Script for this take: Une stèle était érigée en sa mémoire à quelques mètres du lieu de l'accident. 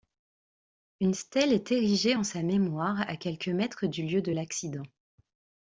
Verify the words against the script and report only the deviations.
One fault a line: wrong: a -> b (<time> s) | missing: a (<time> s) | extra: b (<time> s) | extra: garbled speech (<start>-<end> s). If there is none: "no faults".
wrong: était -> est (1.5 s)